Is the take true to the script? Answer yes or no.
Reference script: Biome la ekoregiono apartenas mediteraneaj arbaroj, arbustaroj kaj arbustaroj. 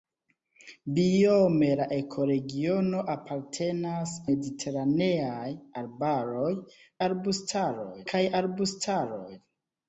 yes